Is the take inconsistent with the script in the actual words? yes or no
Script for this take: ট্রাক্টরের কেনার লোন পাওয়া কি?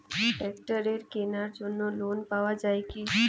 yes